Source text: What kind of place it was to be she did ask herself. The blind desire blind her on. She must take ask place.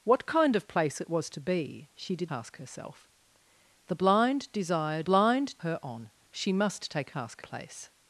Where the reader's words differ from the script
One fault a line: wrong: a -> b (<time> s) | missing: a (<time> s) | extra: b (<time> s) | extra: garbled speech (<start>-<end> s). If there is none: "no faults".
no faults